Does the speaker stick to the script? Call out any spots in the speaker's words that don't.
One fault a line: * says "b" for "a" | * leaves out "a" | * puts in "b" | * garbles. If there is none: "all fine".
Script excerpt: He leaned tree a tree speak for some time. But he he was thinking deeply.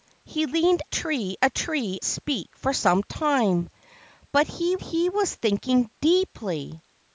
all fine